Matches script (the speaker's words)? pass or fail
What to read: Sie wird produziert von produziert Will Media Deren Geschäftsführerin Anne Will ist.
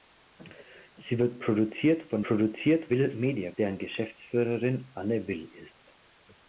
pass